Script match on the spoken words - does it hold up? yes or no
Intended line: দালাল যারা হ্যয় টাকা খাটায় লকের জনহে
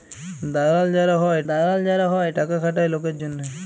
no